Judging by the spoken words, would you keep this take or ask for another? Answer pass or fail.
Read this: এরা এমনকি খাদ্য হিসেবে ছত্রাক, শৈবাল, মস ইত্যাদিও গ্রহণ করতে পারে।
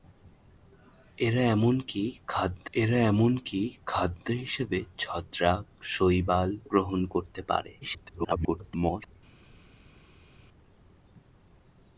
fail